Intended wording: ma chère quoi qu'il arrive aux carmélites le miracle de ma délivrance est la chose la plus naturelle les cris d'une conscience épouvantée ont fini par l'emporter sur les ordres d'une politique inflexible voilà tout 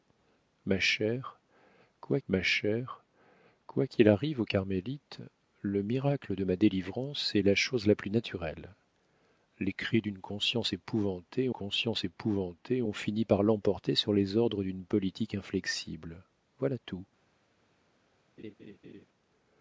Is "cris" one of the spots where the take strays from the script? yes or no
no